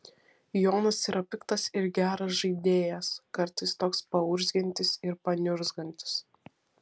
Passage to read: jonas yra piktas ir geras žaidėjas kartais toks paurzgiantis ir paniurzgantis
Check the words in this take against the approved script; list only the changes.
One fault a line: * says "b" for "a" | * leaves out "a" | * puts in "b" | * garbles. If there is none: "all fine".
all fine